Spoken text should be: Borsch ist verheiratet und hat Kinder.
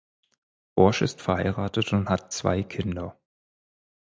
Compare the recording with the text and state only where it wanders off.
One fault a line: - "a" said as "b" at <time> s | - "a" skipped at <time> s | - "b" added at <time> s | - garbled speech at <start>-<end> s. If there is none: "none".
- "zwei" added at 2.3 s